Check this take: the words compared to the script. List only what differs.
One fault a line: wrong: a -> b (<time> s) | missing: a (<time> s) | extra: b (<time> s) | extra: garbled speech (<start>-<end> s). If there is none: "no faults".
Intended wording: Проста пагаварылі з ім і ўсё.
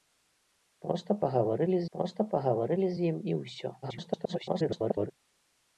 extra: проста пагаварылі (2.0 s)
extra: garbled speech (3.8-5.1 s)